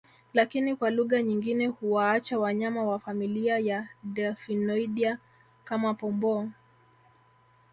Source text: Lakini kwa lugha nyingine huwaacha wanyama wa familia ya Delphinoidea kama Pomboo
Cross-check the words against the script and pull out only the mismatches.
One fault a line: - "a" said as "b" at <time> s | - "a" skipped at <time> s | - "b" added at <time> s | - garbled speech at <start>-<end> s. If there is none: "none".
none